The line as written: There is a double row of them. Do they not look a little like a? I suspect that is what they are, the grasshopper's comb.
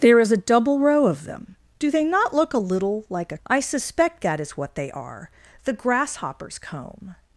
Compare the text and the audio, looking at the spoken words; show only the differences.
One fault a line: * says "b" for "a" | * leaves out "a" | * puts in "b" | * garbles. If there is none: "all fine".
all fine